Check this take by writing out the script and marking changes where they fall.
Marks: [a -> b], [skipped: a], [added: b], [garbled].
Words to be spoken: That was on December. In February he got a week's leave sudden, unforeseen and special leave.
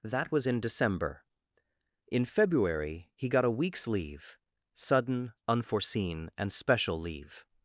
That was [on -> in] December. In February he got a week's leave sudden, unforeseen and special leave.